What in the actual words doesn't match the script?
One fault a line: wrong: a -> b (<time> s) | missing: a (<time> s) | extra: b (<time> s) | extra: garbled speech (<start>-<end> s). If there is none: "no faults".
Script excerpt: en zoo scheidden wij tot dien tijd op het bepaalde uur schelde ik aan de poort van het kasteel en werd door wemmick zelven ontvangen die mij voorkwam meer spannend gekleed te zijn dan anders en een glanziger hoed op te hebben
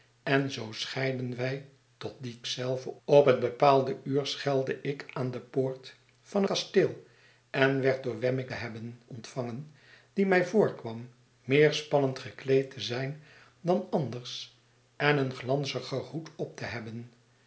wrong: tijd -> zelven (2.4 s)
missing: het (6.4 s)
wrong: zelven -> hebben (8.5 s)